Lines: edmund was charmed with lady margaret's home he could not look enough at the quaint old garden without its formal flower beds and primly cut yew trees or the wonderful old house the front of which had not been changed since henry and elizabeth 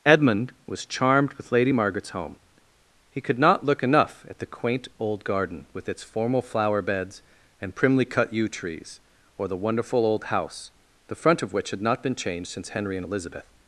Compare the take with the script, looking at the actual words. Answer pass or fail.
fail